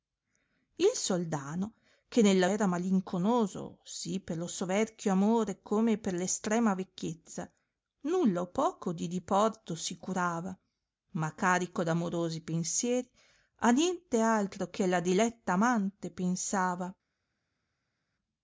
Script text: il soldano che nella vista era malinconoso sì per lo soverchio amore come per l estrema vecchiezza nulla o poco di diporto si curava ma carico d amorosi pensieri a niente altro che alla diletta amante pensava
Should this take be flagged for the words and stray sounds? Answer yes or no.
yes